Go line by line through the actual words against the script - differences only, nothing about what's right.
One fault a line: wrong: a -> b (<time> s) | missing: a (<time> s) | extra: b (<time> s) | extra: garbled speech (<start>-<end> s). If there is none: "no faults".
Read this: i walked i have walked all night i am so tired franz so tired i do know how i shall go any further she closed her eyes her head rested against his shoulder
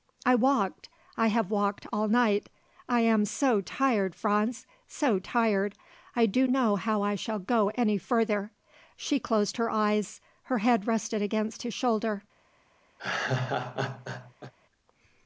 no faults